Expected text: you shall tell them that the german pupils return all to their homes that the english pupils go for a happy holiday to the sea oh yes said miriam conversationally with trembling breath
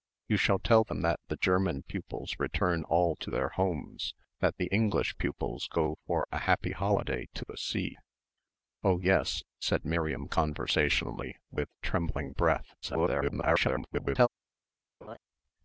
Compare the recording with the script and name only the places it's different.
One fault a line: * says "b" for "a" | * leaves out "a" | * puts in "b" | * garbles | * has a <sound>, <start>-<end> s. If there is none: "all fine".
* garbles
* has a laugh, 15.0-15.2 s